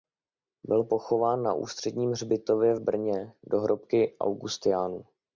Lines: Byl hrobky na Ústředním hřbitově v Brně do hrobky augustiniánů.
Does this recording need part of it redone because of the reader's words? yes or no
yes